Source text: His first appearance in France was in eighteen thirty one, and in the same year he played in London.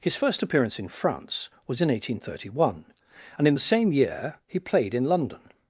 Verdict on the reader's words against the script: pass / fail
pass